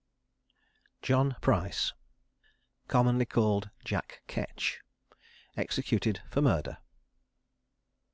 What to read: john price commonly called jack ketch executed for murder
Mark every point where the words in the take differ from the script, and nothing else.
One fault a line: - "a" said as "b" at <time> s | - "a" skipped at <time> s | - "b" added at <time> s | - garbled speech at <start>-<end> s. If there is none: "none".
none